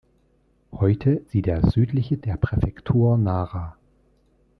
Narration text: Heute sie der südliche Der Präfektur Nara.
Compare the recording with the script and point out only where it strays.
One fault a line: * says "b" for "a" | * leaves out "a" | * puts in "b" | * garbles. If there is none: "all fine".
all fine